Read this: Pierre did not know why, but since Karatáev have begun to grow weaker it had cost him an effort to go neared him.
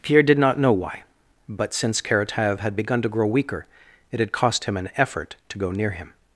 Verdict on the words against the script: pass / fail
fail